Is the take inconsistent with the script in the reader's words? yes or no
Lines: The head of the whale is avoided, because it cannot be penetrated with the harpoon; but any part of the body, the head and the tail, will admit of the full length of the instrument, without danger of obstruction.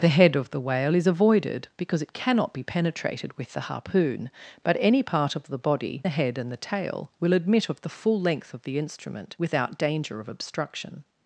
no